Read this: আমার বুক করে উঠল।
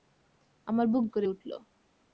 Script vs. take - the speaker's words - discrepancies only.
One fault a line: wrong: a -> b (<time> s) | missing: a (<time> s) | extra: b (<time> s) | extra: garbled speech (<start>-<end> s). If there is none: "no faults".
no faults